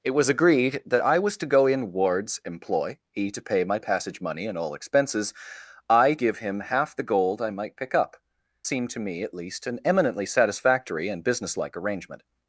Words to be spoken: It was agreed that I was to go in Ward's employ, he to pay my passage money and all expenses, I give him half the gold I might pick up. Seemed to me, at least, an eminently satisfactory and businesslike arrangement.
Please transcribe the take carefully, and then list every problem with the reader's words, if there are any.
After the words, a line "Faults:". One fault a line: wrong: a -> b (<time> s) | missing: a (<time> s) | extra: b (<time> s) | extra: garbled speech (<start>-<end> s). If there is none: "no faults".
It was agreed that I was to go in Ward's employ, he to pay my passage money and all expenses, I give him half the gold I might pick up. Seemed to me, at least, an eminently satisfactory and businesslike arrangement.
Faults:
no faults